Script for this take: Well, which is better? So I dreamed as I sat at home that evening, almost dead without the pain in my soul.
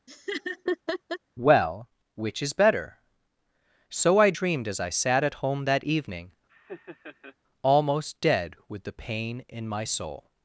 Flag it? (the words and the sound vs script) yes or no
yes